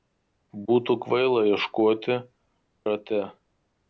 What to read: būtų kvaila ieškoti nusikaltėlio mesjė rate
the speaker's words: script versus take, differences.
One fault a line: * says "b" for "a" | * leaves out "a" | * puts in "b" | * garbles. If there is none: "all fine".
* leaves out "nusikaltėlio mesjė"